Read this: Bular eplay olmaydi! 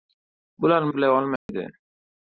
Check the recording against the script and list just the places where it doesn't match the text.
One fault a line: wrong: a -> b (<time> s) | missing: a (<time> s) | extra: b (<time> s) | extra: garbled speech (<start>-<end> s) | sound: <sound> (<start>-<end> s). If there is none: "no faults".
sound: dropout (1.4-1.5 s)